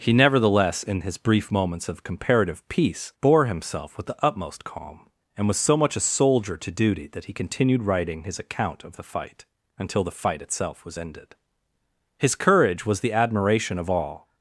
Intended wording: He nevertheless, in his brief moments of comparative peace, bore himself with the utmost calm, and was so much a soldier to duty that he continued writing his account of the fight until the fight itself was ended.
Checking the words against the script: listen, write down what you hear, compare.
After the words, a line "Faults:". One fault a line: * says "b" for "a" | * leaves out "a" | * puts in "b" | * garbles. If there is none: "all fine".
He nevertheless, in his brief moments of comparative peace, bore himself with the utmost calm, and was so much a soldier to duty that he continued writing his account of the fight until the fight itself was ended. His courage was the admiration of all
Faults:
* puts in "His courage was the admiration of all"